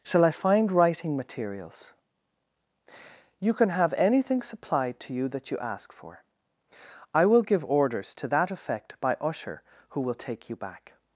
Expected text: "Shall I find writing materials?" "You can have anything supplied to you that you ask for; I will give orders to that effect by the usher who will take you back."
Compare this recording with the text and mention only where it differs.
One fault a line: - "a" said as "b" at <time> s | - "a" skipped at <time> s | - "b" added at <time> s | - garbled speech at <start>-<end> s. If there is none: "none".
- "the" skipped at 9.2 s